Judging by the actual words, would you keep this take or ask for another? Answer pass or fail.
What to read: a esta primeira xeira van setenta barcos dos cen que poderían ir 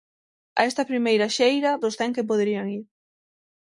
fail